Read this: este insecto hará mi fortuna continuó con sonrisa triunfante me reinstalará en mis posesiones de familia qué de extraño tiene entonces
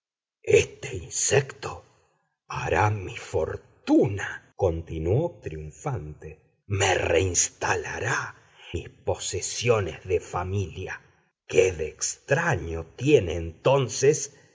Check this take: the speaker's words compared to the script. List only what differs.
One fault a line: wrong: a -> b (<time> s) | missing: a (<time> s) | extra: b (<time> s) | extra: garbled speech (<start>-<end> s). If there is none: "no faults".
missing: con sonrisa (5.4 s)
missing: en (8.4 s)